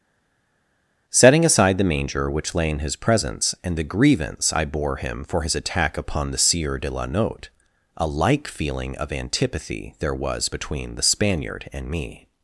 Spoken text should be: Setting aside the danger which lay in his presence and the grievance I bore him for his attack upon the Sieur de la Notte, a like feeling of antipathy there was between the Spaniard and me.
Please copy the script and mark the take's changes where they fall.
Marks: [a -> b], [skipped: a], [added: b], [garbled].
Setting aside the [danger -> manger] which lay in his presence and the grievance I bore him for his attack upon the Sieur de la Notte, a like feeling of antipathy there was between the Spaniard and me.